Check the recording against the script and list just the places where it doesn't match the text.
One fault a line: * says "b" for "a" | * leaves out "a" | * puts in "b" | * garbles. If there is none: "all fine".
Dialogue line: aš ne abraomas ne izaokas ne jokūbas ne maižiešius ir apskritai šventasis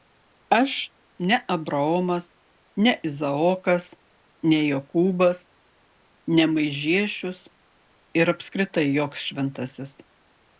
* puts in "joks"